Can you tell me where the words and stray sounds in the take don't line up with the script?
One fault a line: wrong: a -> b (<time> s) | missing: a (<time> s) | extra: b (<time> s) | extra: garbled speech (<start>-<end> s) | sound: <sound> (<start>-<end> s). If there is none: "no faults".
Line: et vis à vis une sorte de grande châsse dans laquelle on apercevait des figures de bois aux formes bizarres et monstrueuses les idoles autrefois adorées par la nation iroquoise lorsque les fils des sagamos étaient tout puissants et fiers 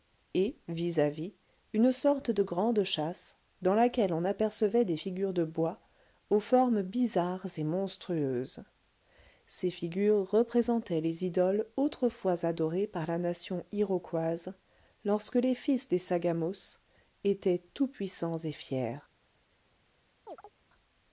extra: ces figures représentaient (9.5 s)
sound: chirp (20.3-20.5 s)